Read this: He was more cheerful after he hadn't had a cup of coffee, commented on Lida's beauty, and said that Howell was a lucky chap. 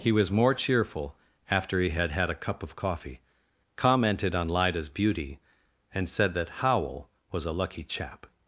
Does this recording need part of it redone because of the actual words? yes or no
yes